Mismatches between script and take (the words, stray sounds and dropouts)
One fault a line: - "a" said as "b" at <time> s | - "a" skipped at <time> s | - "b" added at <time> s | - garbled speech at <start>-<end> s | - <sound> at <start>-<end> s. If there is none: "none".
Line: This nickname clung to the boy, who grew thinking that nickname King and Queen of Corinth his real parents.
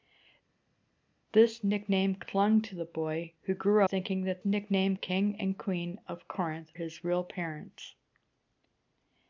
none